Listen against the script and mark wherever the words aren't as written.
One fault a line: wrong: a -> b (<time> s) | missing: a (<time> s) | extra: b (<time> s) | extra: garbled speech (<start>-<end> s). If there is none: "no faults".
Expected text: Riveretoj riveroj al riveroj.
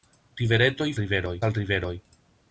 no faults